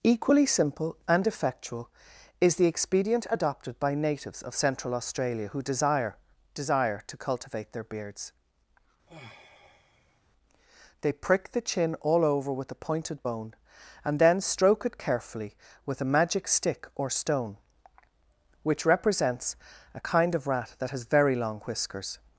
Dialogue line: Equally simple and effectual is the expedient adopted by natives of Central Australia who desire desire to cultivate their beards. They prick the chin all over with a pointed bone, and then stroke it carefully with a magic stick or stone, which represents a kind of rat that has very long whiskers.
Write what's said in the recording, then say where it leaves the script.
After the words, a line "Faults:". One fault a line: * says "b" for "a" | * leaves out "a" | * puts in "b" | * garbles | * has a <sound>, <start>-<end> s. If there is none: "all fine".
Equally simple and effectual is the expedient adopted by natives of Central Australia who desire desire to cultivate their beards. They prick the chin all over with a pointed bone, and then stroke it carefully with a magic stick or stone, which represents a kind of rat that has very long whiskers.
Faults:
* has a sigh, 9.1-10.2 s